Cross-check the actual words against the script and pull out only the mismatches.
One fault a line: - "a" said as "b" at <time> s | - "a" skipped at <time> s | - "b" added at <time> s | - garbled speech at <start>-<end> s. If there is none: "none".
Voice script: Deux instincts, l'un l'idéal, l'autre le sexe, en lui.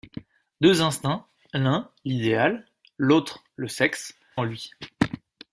none